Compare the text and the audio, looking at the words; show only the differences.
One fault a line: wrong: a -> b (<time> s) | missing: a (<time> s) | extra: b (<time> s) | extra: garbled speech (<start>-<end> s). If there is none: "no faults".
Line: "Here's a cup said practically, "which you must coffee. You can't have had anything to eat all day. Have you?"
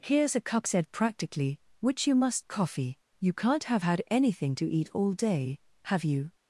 no faults